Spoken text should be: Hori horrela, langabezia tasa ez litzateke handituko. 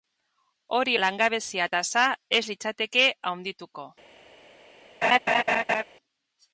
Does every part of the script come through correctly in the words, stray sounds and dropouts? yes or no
no